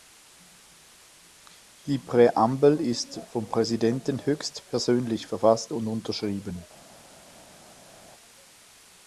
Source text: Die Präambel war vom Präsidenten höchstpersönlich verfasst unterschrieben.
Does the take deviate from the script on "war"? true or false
true